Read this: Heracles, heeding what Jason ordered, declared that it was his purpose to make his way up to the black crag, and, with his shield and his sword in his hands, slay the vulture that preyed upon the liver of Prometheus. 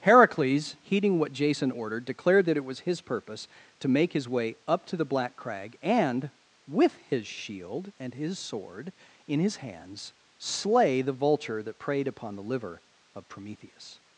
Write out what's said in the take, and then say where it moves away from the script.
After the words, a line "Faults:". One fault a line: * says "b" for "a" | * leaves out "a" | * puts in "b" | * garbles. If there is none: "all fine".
Heracles, heeding what Jason ordered, declared that it was his purpose to make his way up to the black crag, and, with his shield and his sword in his hands, slay the vulture that preyed upon the liver of Prometheus.
Faults:
all fine